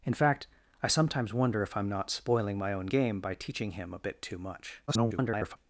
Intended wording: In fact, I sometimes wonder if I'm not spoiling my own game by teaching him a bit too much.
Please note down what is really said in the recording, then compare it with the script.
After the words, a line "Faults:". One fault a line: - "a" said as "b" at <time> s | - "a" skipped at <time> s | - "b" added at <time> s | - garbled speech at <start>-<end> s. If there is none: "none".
In fact, I sometimes wonder if I'm not spoiling my own game by teaching him a bit too much. [garbled]
Faults:
- garbled speech at 4.9-5.6 s